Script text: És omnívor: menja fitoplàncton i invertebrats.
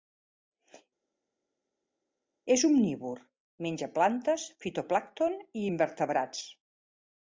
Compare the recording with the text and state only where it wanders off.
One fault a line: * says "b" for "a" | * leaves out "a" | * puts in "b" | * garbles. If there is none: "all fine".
* puts in "plantes"